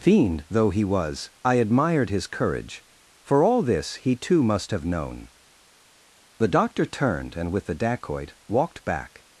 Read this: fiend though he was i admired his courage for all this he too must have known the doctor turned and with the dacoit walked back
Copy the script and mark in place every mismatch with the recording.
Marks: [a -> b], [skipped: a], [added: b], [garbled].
fiend though he was i admired his courage for all this he too must have known the doctor turned and with the dacoit walked back